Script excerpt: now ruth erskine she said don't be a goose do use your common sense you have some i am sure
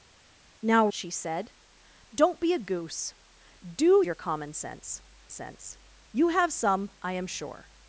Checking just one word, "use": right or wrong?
wrong